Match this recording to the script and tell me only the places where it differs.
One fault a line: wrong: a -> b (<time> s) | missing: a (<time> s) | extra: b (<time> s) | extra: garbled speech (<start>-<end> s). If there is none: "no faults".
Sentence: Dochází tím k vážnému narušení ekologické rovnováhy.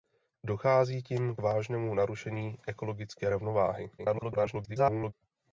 missing: k (1.4 s)
extra: garbled speech (4.0-5.1 s)